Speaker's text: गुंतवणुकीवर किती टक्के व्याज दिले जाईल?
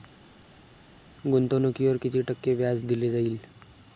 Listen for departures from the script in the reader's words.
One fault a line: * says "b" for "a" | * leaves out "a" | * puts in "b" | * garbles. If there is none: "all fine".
all fine